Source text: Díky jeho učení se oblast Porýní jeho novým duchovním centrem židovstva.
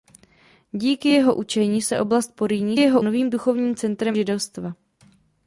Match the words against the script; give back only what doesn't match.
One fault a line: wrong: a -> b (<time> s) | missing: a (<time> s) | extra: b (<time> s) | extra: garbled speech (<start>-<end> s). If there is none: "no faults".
no faults